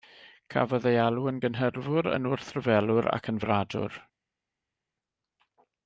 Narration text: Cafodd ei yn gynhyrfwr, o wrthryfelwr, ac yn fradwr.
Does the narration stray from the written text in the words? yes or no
yes